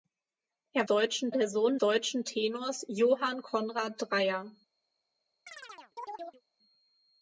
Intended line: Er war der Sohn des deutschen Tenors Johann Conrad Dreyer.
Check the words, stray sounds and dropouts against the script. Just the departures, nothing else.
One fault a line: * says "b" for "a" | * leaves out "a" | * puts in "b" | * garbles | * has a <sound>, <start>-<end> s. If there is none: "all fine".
* says "deutschen" for "war"
* leaves out "des"
* has a chirp, 5.5-6.4 s